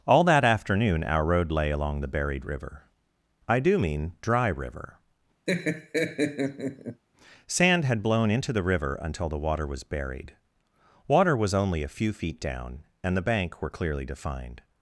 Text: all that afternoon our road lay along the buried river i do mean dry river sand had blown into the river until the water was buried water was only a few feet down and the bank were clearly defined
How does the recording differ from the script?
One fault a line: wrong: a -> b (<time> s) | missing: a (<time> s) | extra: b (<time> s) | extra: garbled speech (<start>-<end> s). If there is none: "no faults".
no faults